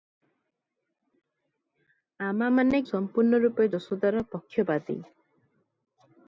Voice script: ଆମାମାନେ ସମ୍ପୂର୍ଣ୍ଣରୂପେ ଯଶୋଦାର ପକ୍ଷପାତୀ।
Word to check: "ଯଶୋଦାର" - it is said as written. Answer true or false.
true